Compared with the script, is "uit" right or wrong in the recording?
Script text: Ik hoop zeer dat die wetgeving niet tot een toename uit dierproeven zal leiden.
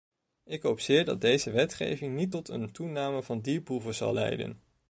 wrong